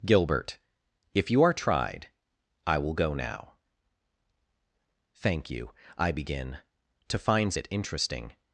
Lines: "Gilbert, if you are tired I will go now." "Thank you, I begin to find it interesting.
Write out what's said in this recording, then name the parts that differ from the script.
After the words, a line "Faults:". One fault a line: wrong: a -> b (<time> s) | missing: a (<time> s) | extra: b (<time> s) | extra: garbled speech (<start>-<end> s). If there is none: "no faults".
"Gilbert, if you are tried I will go now." "Thank you, I begin to finds it interesting.
Faults:
wrong: tired -> tried (1.5 s)
wrong: find -> finds (7.2 s)